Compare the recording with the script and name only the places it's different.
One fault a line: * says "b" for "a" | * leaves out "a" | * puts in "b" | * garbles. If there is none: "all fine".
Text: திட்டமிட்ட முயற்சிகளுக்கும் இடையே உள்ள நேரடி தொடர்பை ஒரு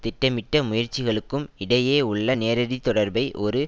all fine